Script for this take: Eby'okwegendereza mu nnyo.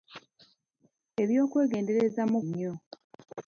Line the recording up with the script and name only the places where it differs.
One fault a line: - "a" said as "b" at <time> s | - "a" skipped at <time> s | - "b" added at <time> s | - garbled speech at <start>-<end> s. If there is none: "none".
none